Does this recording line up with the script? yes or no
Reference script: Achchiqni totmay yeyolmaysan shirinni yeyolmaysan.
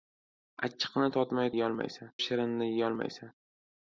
yes